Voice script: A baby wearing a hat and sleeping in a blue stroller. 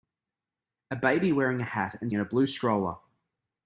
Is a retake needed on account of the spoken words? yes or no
yes